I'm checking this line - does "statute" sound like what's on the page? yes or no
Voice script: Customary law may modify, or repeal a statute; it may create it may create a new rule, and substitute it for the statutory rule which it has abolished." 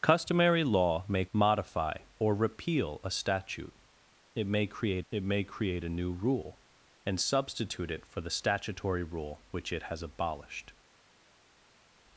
yes